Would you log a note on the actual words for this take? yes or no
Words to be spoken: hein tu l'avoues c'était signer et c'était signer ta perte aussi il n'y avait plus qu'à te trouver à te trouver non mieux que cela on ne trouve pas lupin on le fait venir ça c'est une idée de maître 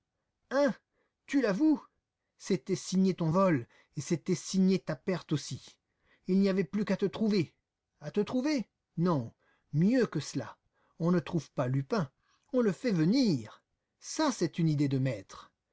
yes